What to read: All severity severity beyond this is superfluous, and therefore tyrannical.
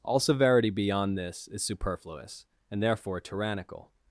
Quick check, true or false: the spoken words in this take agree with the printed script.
false